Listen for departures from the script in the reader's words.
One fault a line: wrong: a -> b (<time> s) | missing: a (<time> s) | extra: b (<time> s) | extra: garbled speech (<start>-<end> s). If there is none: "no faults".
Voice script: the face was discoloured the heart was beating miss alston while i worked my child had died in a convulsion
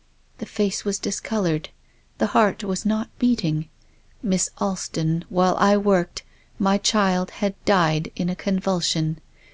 extra: not (2.9 s)